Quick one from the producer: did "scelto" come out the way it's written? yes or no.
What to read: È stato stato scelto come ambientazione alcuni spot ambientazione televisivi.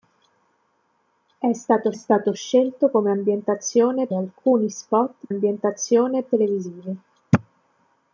yes